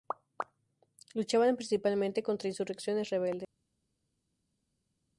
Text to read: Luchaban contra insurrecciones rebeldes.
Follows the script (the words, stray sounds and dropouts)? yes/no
no